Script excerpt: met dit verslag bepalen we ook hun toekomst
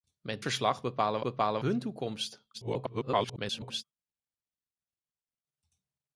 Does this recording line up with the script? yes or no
no